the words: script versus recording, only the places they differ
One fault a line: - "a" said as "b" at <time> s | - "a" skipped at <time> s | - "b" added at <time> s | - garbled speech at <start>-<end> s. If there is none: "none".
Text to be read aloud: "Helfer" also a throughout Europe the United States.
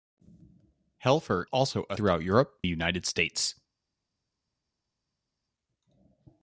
none